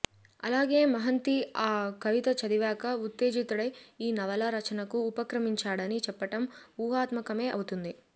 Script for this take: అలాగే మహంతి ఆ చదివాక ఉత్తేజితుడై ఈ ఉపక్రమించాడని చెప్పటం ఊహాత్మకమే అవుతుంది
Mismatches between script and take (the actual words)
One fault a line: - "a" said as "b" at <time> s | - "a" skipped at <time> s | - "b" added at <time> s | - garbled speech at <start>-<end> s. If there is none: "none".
- "కవిత" added at 2.0 s
- "నవలా రచనకు" added at 4.1 s